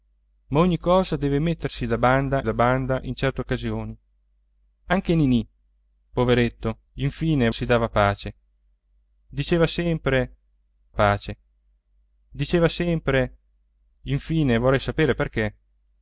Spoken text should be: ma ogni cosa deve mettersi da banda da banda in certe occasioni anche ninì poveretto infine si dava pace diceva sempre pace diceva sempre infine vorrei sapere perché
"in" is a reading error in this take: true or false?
false